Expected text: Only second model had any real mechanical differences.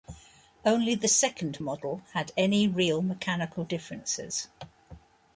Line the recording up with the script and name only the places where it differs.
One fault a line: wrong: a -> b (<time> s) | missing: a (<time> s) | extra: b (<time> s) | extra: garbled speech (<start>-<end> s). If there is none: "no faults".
extra: the (0.9 s)